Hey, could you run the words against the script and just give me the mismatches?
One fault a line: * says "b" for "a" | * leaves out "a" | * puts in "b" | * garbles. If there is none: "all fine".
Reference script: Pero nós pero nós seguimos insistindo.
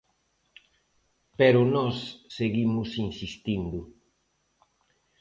* leaves out "pero nós"